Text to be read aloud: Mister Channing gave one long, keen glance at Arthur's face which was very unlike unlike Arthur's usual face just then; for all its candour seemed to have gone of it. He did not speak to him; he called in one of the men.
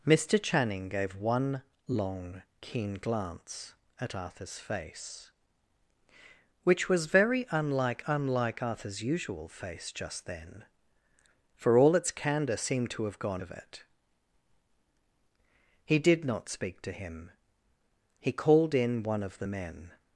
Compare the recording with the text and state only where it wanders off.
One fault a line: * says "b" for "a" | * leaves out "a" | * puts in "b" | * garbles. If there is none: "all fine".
all fine